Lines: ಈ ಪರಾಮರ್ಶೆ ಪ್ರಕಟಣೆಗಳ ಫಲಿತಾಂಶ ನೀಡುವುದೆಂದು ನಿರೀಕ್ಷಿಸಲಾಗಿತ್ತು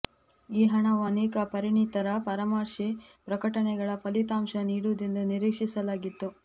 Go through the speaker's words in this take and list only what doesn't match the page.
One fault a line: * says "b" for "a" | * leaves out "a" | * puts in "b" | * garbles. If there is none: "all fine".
* puts in "ಹಣವು ಅನೇಕ ಪರಿಣಿತರ"